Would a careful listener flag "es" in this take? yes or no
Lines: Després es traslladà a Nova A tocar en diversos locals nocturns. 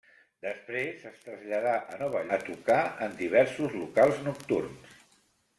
no